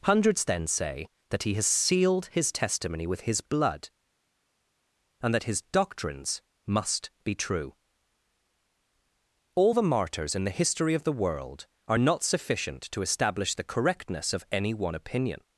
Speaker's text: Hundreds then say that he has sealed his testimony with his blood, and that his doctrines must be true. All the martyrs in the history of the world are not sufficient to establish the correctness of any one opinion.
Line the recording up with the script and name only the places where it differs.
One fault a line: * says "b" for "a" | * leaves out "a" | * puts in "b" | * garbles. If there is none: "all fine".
all fine